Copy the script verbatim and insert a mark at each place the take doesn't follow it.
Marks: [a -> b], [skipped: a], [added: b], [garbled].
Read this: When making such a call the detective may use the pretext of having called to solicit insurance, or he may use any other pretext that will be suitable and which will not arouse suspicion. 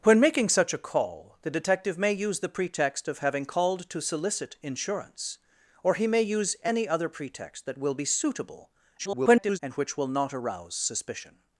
When making such a call the detective may use the pretext of having called to solicit insurance, or he may use any other pretext that will be suitable [garbled] and which will not arouse suspicion.